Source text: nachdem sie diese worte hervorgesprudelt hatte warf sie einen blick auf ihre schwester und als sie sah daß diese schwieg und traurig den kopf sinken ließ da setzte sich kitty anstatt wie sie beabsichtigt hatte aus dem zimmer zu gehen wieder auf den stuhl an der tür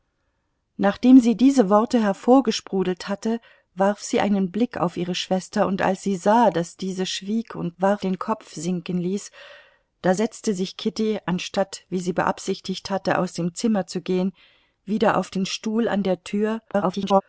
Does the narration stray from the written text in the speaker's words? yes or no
yes